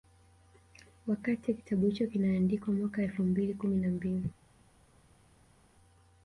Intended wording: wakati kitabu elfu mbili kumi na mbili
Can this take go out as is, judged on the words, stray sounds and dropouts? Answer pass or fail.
fail